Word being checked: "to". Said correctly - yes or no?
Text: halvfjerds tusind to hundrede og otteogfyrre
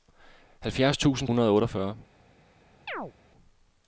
no